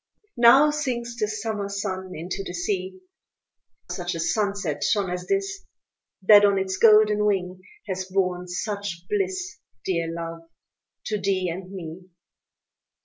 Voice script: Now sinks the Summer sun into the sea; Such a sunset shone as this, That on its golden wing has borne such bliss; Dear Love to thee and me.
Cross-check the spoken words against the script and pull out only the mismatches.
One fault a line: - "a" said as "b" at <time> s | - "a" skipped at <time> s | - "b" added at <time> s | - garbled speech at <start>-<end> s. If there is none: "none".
none